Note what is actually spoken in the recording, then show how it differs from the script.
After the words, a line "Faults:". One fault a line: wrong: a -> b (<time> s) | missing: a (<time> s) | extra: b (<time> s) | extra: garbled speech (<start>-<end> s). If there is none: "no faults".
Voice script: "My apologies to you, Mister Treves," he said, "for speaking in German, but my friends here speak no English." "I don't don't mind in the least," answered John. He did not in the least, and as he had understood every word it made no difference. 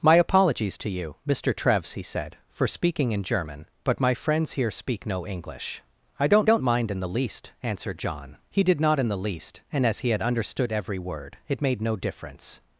"My apologies to you, Mister Treves," he said, "for speaking in German, but my friends here speak no English." "I don't don't mind in the least," answered John. He did not in the least, and as he had understood every word it made no difference.
Faults:
no faults